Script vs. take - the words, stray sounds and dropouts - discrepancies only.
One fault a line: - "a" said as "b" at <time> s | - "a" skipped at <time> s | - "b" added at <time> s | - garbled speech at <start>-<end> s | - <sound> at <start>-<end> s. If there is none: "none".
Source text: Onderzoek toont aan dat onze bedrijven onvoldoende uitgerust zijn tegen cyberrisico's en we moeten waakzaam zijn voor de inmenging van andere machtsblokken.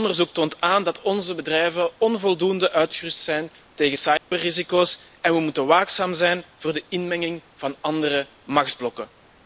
- dropout at 4.2-4.3 s